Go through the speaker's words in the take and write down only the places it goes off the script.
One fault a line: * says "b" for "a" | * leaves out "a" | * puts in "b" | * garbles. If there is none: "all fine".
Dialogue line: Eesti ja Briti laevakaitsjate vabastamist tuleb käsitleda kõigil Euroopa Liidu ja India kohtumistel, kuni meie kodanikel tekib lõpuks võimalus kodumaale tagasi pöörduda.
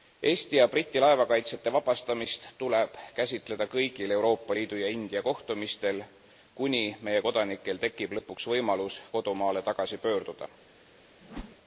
all fine